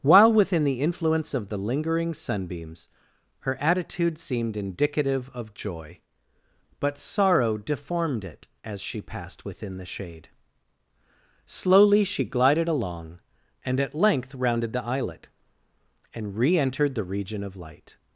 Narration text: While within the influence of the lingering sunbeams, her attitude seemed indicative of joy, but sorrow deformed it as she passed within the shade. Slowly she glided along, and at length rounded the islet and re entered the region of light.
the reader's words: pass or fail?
pass